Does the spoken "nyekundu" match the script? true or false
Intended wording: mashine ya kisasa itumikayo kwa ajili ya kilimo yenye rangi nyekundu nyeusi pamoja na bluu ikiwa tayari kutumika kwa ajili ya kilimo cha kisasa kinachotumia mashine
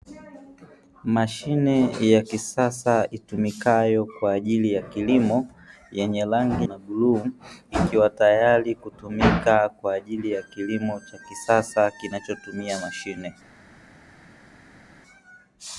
false